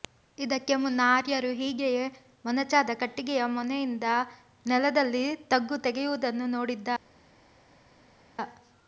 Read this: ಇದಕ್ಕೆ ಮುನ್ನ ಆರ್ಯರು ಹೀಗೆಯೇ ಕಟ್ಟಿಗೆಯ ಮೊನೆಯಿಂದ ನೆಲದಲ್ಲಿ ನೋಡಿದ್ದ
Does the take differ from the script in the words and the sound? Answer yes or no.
yes